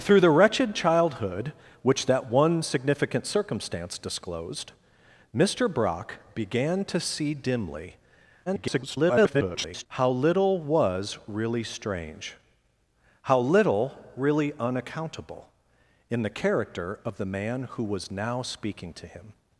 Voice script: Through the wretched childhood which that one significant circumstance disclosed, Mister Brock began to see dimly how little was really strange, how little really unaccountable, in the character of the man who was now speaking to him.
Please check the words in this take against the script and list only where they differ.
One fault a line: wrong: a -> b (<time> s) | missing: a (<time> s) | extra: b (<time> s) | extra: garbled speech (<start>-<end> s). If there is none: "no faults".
extra: garbled speech (8.5-9.9 s)